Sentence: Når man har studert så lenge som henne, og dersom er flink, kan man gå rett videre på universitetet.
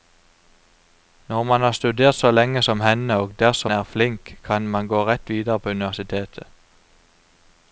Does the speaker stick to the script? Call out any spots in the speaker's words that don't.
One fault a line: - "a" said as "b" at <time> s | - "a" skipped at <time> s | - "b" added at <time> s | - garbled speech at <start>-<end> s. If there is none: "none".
none